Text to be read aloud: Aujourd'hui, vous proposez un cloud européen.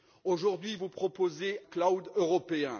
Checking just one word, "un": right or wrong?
wrong